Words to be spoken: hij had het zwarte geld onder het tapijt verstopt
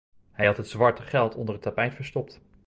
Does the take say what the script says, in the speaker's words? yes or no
yes